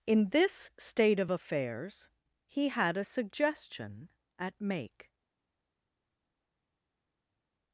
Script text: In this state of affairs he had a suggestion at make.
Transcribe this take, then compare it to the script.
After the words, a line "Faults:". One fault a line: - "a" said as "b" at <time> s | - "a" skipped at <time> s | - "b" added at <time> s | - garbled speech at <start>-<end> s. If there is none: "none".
In this state of affairs he had a suggestion at make.
Faults:
none